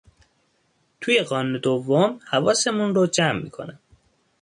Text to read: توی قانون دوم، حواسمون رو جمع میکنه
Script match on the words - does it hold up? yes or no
yes